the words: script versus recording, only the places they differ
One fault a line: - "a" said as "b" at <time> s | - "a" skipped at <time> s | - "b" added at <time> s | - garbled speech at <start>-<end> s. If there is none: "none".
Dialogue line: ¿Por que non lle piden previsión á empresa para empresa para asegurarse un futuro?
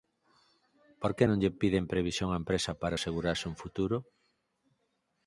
- "empresa para" skipped at 3.0 s